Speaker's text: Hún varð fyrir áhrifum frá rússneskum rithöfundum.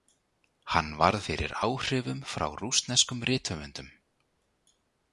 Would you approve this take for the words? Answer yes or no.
no